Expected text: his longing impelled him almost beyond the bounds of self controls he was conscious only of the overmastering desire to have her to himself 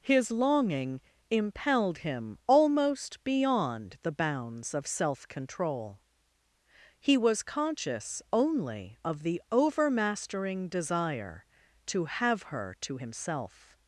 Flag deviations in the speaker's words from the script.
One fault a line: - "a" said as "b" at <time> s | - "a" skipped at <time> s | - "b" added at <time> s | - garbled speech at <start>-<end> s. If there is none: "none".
- "controls" said as "control" at 5.3 s